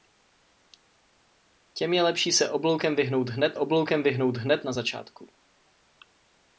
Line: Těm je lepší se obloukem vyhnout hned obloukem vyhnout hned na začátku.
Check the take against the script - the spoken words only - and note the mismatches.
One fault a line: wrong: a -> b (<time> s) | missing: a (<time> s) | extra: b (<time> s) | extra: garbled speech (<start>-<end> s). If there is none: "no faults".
no faults